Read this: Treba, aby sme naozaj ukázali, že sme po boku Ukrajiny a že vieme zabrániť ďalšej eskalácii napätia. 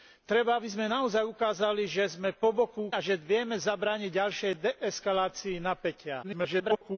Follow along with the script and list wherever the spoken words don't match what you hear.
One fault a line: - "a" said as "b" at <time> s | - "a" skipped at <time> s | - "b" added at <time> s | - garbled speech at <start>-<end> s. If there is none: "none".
- "Ukrajiny" skipped at 2.9 s
- garbled speech at 6.2-7.0 s